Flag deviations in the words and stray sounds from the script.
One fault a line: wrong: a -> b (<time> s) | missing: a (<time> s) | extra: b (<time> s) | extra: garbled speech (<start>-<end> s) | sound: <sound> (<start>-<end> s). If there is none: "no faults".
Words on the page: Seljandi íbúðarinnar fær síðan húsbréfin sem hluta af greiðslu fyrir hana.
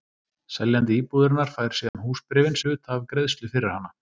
sound: dropout (1.9-1.9 s)
missing: sem (2.6 s)